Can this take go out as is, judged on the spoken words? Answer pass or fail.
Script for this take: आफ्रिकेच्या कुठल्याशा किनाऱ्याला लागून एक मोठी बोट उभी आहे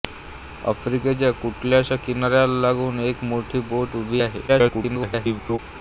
fail